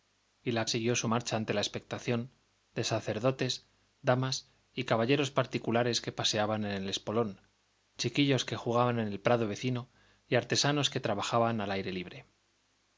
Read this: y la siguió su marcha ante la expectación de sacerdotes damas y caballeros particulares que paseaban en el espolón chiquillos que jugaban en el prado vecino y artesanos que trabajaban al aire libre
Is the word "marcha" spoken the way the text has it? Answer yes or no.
yes